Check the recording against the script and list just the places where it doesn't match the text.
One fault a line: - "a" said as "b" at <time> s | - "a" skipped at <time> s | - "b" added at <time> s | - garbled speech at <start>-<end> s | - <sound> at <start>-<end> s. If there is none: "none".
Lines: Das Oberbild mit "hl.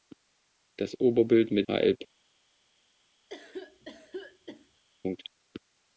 - cough at 3.3-4.8 s